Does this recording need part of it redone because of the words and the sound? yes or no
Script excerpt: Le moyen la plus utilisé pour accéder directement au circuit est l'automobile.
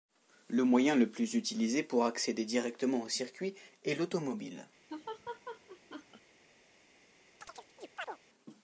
yes